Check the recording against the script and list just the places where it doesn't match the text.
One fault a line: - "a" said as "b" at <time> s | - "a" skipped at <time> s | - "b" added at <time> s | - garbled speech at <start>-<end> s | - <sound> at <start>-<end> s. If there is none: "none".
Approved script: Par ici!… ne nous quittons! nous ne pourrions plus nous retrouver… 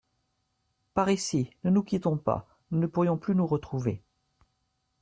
- "pas" added at 2.2 s